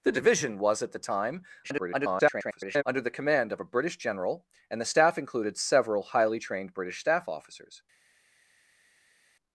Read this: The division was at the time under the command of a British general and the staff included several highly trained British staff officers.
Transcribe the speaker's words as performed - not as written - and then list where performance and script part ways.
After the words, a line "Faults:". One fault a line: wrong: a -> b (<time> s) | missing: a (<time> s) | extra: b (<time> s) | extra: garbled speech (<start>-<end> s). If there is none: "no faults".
The division was at the time [garbled] under the command of a British general and the staff included several highly trained British staff officers.
Faults:
extra: garbled speech (1.6-2.8 s)